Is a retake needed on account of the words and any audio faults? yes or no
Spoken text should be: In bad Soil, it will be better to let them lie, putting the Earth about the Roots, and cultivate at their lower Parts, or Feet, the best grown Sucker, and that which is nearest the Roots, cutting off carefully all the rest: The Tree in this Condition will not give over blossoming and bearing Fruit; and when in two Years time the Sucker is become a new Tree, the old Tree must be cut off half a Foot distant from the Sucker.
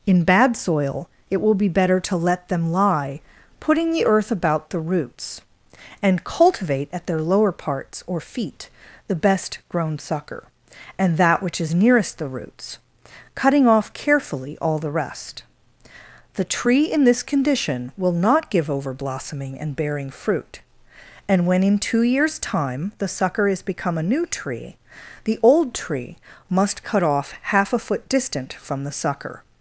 yes